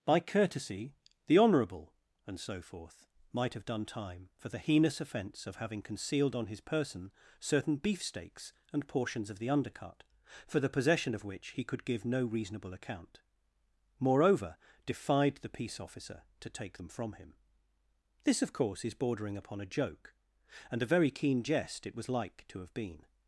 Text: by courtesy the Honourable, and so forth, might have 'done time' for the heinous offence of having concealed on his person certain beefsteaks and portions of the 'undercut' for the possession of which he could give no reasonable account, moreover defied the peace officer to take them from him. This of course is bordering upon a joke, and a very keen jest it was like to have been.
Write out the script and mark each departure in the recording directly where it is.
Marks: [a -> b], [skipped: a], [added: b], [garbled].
by courtesy the Honourable, and so forth, might have 'done time' for the heinous offence of having concealed on his person certain beefsteaks and portions of the 'undercut' for the possession of which he could give no reasonable account, moreover defied the peace officer to take them from him. This of course is bordering upon a joke, and a very keen jest it was like to have been.